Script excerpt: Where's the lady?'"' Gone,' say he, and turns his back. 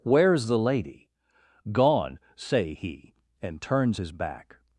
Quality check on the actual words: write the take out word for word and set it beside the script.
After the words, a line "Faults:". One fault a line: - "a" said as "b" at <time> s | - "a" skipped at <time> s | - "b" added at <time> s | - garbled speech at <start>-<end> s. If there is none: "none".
Where's the lady?'"' Gone,' say he, and turns his back.
Faults:
none